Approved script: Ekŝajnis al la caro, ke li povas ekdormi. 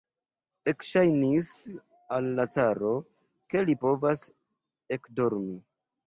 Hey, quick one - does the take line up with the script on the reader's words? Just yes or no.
yes